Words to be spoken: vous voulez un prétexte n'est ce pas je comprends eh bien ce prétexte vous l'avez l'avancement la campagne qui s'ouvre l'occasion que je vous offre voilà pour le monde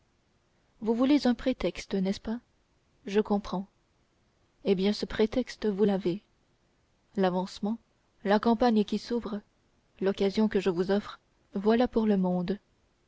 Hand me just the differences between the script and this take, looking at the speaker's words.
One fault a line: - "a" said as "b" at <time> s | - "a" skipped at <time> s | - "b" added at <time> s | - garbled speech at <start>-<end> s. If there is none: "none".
none